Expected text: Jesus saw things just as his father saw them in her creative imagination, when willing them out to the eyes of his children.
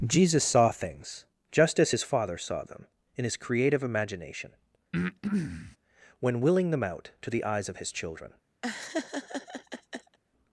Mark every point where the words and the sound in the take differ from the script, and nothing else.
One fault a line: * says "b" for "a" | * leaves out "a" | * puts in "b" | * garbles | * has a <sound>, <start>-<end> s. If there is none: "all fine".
* says "his" for "her"
* has a breath, 4.9-5.8 s
* has a laugh, 8.6-10.2 s